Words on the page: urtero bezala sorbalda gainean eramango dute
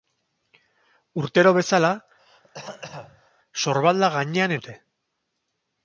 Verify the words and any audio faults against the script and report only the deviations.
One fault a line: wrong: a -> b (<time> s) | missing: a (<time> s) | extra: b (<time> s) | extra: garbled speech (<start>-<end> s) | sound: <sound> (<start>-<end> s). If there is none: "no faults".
sound: throat clearing (2.2-3.3 s)
missing: eramango (4.6 s)